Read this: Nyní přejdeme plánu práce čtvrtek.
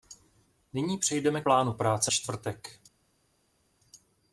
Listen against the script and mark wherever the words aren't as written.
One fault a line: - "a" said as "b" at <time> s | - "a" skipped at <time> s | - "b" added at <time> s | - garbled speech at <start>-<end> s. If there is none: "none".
none